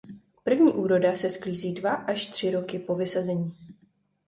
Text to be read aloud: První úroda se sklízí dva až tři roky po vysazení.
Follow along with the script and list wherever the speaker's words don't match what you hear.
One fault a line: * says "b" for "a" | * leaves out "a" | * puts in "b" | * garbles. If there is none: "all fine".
all fine